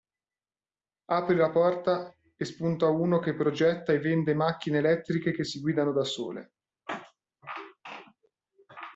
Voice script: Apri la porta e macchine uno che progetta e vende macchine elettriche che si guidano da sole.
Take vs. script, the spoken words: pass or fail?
fail